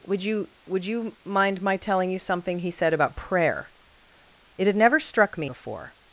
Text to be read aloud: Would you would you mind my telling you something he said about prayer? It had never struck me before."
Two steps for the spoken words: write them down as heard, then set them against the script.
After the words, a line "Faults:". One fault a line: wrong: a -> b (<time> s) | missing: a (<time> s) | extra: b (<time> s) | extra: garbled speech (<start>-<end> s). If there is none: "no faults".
Would you would you mind my telling you something he said about prayer? It had never struck me before."
Faults:
no faults